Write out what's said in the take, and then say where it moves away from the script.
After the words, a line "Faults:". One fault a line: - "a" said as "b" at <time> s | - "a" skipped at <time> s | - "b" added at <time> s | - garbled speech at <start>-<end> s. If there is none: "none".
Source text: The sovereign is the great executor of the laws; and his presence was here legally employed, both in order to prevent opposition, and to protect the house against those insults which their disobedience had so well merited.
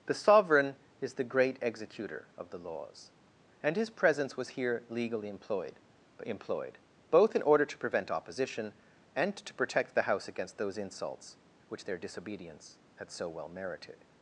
The sovereign is the great executor of the laws; and his presence was here legally employed employed, both in order to prevent opposition, and to protect the house against those insults which their disobedience had so well merited.
Faults:
- "employed" added at 6.2 s